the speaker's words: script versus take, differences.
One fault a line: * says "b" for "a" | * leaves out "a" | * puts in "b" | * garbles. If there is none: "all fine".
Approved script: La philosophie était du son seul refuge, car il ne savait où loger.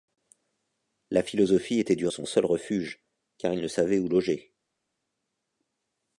all fine